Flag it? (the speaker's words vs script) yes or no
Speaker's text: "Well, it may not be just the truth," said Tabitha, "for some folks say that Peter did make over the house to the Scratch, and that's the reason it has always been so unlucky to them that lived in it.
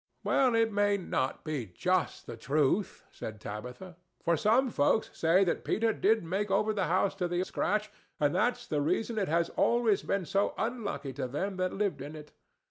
no